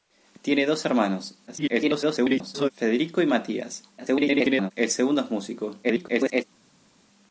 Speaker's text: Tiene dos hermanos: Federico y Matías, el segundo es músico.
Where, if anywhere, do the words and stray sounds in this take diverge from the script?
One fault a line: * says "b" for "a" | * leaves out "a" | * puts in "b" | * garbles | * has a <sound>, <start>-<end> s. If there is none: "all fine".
* garbles
* garbles
* garbles